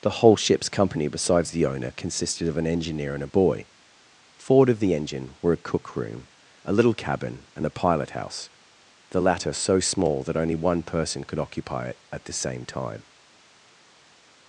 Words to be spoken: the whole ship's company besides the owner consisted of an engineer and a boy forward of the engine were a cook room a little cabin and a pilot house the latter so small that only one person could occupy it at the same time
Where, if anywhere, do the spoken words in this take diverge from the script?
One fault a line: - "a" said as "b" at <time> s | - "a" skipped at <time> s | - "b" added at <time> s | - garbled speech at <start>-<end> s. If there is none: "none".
none